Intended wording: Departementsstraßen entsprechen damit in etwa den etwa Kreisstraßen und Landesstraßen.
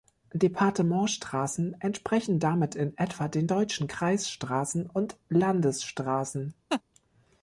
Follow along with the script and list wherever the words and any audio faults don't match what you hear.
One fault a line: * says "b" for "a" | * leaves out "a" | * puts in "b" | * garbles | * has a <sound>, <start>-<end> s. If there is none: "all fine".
* says "deutschen" for "etwa"
* has a laugh, 6.7-6.8 s